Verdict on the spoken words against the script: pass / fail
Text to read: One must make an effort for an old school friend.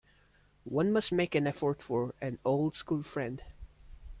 pass